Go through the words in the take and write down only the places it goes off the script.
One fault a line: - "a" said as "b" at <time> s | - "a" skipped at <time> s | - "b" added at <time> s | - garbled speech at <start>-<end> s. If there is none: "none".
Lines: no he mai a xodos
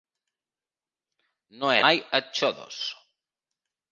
none